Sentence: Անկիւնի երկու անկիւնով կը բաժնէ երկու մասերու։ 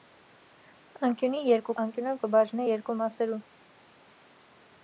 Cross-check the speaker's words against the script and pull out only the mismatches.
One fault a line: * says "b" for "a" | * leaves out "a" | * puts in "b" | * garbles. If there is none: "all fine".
all fine